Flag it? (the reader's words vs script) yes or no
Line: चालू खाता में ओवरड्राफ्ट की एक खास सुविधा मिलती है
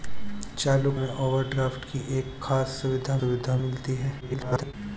yes